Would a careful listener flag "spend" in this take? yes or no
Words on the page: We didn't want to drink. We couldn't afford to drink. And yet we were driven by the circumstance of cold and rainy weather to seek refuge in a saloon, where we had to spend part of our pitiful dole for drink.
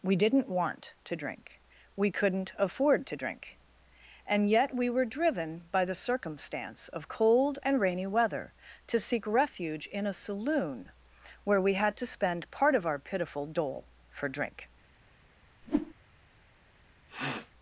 no